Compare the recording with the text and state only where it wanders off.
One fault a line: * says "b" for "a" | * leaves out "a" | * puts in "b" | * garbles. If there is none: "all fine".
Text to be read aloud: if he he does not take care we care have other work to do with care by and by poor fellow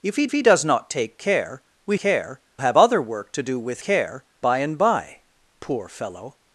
all fine